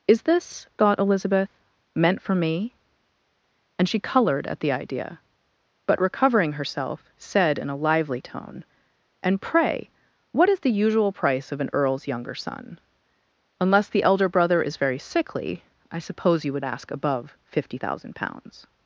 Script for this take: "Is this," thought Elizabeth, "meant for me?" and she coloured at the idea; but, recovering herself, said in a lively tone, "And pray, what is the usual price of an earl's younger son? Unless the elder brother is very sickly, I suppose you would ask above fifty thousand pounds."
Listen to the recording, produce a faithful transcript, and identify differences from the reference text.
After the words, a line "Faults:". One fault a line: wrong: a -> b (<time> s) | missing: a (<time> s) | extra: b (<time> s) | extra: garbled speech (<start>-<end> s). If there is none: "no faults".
"Is this," thought Elizabeth, "meant for me?" and she coloured at the idea; but, recovering herself, said in a lively tone, "And pray, what is the usual price of an earl's younger son? Unless the elder brother is very sickly, I suppose you would ask above fifty thousand pounds."
Faults:
no faults